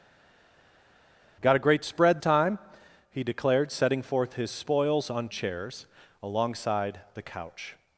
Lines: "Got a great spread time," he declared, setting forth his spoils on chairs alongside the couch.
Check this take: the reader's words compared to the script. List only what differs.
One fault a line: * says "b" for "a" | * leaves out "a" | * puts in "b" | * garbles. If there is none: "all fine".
all fine